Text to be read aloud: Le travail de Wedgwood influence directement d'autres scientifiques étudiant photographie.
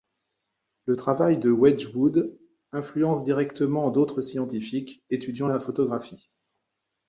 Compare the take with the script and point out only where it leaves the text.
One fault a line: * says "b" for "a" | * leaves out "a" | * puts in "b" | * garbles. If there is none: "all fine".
* puts in "la"